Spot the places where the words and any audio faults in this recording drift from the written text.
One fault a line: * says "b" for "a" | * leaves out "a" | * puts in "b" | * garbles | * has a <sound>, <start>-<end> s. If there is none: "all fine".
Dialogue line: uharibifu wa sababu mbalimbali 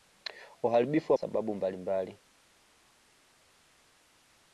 all fine